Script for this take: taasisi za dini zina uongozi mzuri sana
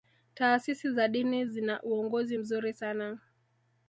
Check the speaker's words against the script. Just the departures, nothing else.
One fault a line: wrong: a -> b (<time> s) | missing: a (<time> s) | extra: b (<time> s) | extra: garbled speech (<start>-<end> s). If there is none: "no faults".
no faults